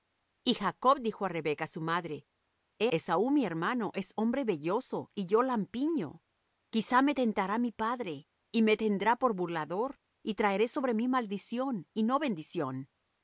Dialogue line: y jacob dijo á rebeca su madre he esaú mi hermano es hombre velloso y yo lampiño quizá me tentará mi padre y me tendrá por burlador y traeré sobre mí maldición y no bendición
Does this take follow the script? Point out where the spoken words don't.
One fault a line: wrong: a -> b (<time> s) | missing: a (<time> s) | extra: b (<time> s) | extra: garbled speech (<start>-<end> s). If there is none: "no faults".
no faults